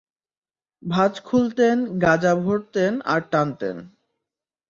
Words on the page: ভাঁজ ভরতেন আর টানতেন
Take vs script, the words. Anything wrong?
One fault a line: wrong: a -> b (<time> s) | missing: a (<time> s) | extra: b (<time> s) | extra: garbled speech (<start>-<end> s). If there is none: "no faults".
extra: খুলতেন গাঁজা (1.2 s)